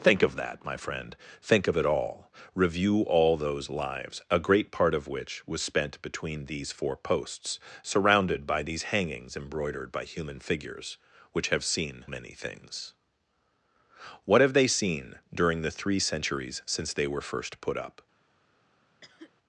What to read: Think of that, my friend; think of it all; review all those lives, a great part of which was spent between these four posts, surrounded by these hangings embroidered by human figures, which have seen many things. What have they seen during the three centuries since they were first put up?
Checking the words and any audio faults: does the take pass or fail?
fail